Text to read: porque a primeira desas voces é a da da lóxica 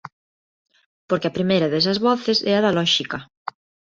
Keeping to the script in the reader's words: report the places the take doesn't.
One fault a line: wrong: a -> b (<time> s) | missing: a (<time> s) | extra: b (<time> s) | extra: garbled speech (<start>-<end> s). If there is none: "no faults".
missing: da (2.8 s)